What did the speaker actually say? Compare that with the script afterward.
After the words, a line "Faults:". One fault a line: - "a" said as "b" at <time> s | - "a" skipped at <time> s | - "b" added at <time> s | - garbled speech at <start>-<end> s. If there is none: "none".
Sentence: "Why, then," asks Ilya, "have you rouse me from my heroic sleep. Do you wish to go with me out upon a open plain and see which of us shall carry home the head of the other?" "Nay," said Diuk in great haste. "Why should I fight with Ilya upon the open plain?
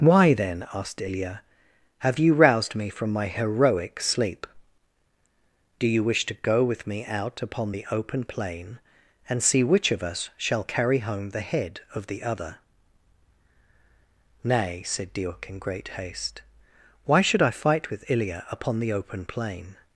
"Why, then," asked Ilya, "have you roused me from my heroic sleep. Do you wish to go with me out upon the open plain and see which of us shall carry home the head of the other?" "Nay," said Diuk in great haste. "Why should I fight with Ilya upon the open plain?
Faults:
- "asks" said as "asked" at 0.7 s
- "rouse" said as "roused" at 2.3 s
- "a" said as "the" at 7.7 s